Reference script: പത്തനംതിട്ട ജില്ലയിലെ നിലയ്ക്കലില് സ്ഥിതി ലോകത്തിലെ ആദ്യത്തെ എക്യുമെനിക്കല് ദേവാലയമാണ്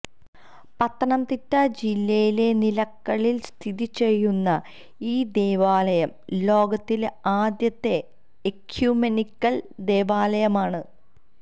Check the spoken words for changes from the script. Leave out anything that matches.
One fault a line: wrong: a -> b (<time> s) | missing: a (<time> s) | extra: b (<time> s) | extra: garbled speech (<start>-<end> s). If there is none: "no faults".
extra: ചെയ്യുന്ന ഈ ദേവാലയം (4.0 s)